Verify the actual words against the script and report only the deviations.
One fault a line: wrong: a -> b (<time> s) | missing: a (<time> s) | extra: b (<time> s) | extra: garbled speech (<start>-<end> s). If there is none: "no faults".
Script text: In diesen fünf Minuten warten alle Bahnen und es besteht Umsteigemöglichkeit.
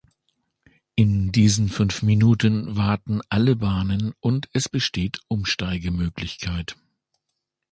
no faults